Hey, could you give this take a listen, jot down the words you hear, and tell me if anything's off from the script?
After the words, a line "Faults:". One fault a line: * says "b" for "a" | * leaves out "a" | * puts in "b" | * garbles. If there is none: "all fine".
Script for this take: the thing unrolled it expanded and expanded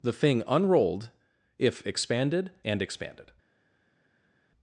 the thing unrolled if expanded and expanded
Faults:
* says "if" for "it"